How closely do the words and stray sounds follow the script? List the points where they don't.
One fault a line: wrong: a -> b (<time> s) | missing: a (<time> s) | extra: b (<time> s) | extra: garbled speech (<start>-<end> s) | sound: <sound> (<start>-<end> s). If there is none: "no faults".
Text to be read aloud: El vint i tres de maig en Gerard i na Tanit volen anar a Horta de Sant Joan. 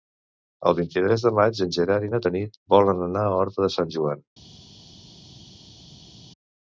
no faults